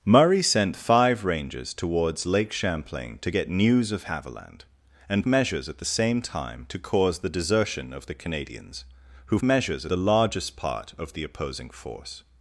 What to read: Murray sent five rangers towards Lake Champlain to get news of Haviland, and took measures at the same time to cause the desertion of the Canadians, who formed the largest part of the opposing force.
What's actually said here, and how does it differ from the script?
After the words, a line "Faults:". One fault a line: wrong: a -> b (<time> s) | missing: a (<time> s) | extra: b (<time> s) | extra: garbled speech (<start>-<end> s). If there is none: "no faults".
Murray sent five rangers towards Lake Champlain to get news of Haviland, and measures at the same time to cause the desertion of the Canadians, who measures the largest part of the opposing force.
Faults:
missing: took (5.3 s)
wrong: formed -> measures (9.4 s)